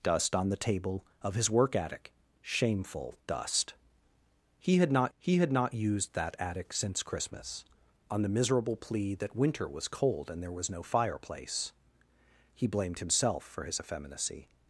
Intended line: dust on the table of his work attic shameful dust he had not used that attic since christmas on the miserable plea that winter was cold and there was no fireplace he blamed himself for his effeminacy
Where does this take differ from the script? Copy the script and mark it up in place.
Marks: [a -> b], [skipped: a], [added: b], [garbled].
dust on the table of his work attic shameful dust he had not [added: he had not] used that attic since christmas on the miserable plea that winter was cold and there was no fireplace he blamed himself for his effeminacy